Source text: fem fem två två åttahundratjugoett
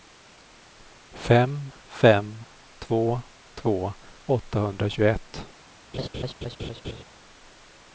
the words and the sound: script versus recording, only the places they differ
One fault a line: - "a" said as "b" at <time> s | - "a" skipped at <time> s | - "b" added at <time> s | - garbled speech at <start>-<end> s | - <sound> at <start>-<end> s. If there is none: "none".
- laugh at 5.9-7.0 s